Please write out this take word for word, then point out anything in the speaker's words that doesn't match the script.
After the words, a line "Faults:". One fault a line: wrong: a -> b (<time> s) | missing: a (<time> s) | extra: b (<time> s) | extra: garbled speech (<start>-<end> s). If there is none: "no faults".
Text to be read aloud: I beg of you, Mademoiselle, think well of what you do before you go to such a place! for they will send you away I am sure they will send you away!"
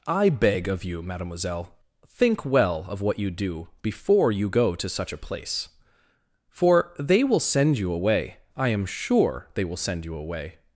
I beg of you, Mademoiselle, think well of what you do before you go to such a place! for they will send you away I am sure they will send you away!"
Faults:
no faults